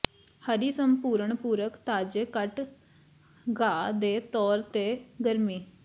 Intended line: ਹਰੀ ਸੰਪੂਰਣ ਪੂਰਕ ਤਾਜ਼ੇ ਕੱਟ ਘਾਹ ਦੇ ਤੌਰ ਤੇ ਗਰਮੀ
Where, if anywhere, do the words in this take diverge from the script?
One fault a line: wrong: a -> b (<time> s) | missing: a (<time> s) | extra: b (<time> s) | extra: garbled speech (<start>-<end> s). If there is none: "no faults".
no faults